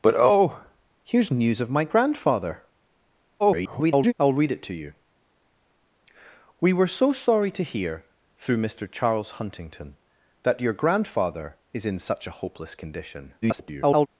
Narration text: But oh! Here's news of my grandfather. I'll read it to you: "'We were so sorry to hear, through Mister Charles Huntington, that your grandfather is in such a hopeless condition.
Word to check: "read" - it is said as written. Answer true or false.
true